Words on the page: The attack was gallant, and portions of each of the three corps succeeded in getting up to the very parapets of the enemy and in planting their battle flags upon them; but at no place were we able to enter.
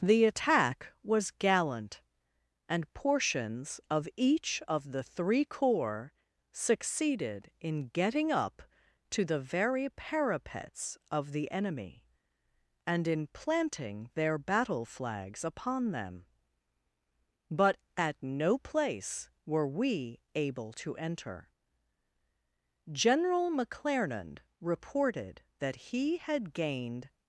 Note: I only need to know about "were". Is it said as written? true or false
true